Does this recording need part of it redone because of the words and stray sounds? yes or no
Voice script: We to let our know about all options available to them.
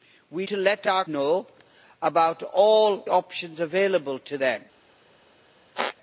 yes